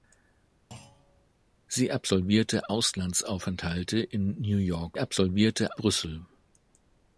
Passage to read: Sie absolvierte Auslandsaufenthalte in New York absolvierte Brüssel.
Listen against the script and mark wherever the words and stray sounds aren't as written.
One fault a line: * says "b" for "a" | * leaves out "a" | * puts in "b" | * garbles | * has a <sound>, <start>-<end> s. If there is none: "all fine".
* has a thud, 0.7-1.3 s